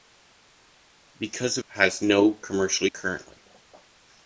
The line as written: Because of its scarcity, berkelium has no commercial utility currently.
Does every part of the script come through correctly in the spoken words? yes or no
no